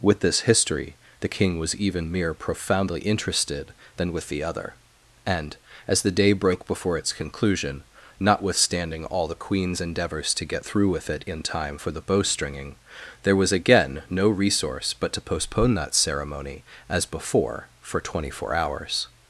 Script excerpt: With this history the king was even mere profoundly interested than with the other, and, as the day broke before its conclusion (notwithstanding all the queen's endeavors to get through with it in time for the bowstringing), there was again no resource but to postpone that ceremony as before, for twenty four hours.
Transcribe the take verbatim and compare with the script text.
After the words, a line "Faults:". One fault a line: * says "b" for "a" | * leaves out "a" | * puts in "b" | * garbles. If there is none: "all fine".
With this history the king was even mere profoundly interested than with the other, and, as the day broke before its conclusion (notwithstanding all the queen's endeavors to get through with it in time for the bowstringing), there was again no resource but to postpone that ceremony as before, for twenty four hours.
Faults:
all fine